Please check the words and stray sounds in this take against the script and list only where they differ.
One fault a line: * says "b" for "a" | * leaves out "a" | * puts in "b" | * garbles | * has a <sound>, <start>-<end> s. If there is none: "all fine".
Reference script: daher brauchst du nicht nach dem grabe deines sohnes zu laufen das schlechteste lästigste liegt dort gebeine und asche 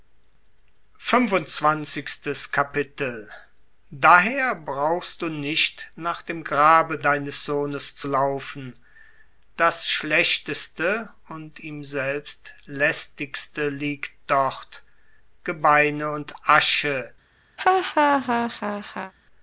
* puts in "und ihm selbst"
* has a laugh, 17.6-19.1 s